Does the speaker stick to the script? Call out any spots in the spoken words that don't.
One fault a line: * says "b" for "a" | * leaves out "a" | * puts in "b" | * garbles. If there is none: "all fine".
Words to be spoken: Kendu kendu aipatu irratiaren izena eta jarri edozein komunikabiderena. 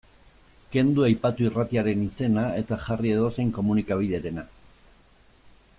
* leaves out "kendu"